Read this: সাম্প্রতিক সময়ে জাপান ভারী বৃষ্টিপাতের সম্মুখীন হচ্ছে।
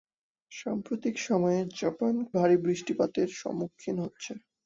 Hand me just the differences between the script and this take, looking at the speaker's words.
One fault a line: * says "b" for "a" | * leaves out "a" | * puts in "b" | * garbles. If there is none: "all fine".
all fine